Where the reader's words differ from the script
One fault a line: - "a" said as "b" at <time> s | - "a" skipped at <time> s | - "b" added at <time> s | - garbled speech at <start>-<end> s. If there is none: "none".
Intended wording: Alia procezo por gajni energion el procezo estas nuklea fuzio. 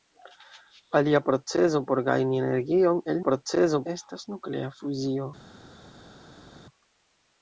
none